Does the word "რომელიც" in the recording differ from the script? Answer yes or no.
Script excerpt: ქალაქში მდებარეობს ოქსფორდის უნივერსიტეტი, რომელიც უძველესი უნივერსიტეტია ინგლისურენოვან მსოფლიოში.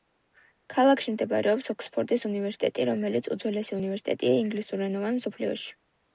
no